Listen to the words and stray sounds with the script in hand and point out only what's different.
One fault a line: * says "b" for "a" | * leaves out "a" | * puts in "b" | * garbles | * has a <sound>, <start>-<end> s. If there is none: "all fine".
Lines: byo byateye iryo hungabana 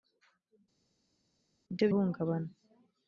* leaves out "byateye iryo"